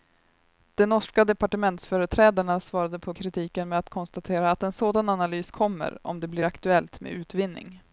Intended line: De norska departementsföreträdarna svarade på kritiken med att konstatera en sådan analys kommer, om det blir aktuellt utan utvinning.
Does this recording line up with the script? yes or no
no